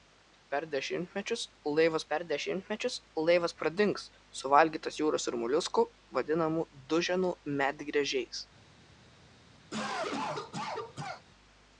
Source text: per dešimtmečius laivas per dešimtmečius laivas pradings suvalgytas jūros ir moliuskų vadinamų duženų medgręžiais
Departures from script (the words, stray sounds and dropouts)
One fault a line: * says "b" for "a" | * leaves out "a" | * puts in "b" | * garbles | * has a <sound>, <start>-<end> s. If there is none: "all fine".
* has a cough, 9.7-11.2 s